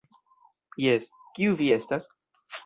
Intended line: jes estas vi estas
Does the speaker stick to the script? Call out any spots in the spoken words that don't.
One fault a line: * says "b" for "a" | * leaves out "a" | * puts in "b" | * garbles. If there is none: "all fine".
* says "kiu" for "estas"